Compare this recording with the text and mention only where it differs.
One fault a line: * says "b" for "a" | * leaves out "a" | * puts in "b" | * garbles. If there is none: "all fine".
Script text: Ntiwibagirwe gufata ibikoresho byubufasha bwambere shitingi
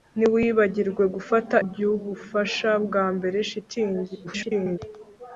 * leaves out "ibikoresho"
* garbles